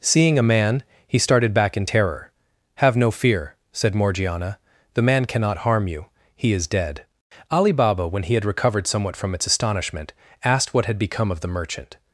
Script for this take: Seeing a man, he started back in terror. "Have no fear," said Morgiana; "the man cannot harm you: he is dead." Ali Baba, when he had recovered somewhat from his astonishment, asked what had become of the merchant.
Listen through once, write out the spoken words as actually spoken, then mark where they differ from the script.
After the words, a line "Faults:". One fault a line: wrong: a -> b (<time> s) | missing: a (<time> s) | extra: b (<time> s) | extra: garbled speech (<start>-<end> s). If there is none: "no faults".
Seeing a man, he started back in terror. "Have no fear," said Morgiana; "the man cannot harm you: he is dead." Ali Baba, when he had recovered somewhat from its astonishment, asked what had become of the merchant.
Faults:
wrong: his -> its (9.3 s)